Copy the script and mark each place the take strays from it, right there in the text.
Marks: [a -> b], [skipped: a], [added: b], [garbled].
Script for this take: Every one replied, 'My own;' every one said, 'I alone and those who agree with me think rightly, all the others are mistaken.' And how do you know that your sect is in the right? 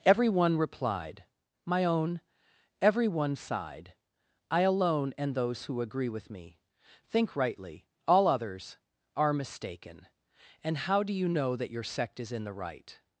Every one replied, 'My own;' every one [said, -> sighed] 'I alone and those who agree with me think rightly, all [skipped: the] others are mistaken.' And how do you know that your sect is in the right?